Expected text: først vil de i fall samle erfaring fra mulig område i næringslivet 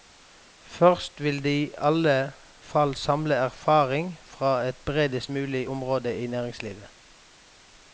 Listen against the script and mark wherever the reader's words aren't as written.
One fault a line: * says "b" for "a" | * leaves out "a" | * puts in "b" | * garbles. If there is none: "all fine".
* puts in "alle"
* puts in "et bredest"